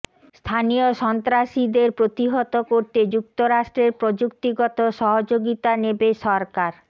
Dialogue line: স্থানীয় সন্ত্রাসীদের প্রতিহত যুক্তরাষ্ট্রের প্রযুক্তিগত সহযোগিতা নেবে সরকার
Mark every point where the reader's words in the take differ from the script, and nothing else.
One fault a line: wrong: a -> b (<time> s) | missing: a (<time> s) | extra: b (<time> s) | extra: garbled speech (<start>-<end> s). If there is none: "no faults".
extra: করতে (2.7 s)